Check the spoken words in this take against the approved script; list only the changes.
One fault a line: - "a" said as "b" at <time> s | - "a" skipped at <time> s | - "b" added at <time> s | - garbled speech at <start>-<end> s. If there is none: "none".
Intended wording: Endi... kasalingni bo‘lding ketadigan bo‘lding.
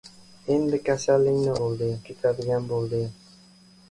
none